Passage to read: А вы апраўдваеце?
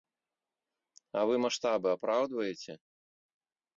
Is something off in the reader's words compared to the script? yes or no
yes